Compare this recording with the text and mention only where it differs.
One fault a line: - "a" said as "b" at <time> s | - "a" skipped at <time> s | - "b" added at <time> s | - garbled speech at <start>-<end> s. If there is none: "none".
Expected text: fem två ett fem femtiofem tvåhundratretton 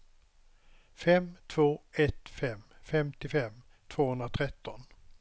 none